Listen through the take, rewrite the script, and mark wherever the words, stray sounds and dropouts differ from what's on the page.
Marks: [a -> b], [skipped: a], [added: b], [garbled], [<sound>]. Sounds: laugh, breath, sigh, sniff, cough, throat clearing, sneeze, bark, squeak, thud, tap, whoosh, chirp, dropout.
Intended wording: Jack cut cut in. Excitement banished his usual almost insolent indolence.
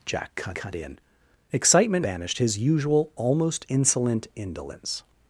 Jack cut cut in. Excitement banished his usual almost insolent indolence.